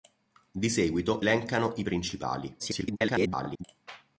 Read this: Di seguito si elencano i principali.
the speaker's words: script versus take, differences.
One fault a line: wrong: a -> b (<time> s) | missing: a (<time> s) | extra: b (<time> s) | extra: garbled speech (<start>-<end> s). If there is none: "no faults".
missing: si (1.2 s)
extra: garbled speech (2.6-3.6 s)